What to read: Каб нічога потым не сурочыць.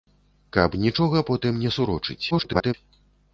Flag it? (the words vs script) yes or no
yes